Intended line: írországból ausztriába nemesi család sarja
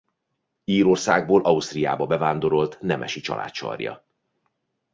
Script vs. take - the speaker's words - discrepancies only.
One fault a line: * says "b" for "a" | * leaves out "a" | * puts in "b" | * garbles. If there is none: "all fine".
* puts in "bevándorolt"